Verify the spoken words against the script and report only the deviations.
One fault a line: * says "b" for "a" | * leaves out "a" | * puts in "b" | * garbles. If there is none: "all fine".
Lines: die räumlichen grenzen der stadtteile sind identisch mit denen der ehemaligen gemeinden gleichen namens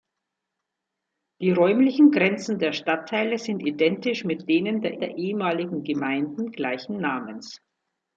* puts in "der"